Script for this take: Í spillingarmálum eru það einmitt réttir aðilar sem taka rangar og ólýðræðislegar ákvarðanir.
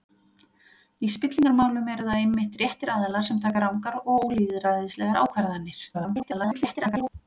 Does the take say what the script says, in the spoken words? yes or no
no